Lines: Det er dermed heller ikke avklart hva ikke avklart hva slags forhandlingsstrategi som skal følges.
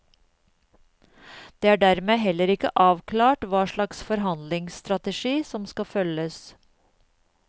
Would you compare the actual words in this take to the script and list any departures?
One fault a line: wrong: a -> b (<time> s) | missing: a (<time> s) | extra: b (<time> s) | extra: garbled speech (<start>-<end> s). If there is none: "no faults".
missing: ikke avklart hva (3.6 s)